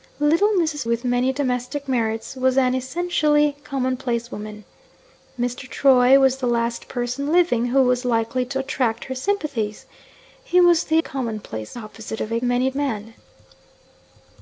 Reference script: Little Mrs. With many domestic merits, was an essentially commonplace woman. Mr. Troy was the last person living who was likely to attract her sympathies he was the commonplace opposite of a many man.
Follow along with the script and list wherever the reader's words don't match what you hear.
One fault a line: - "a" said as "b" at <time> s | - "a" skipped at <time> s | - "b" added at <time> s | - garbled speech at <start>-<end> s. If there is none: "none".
none